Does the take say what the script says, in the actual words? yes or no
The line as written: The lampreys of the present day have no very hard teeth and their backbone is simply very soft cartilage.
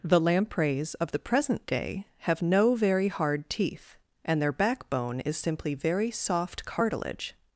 yes